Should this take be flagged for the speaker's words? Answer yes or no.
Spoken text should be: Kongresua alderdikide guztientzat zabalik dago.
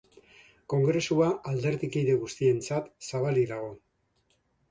no